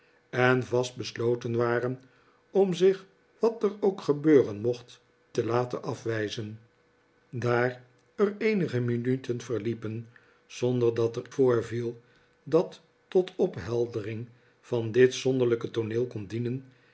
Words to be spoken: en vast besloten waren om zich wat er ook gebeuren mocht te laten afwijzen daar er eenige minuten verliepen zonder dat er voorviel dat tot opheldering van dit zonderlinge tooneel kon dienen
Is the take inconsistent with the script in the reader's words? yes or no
no